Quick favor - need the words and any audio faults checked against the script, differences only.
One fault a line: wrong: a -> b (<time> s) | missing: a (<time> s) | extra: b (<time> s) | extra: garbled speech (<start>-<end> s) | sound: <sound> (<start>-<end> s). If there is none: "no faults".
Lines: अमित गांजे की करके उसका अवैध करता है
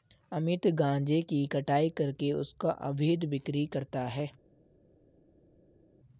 extra: कटाई (1.5 s)
extra: बिक्री (3.3 s)